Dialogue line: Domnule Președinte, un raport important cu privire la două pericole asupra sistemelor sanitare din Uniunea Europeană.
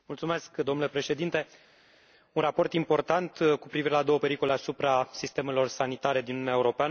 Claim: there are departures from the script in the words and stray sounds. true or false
false